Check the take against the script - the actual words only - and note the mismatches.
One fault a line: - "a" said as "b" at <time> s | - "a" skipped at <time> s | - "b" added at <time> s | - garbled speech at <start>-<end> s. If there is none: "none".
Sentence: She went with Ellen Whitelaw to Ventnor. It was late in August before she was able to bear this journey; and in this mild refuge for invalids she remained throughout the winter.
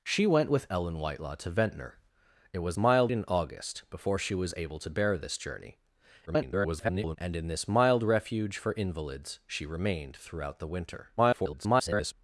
- "late" said as "mild" at 2.8 s
- garbled speech at 6.3-7.2 s
- garbled speech at 11.2-12.1 s